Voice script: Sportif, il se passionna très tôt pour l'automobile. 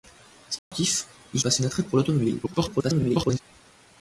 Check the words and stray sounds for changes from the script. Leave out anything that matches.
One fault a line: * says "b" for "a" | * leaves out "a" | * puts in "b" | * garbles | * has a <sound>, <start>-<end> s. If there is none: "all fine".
* has a dropout, 0.6-0.7 s
* leaves out "se"
* leaves out "tôt"
* garbles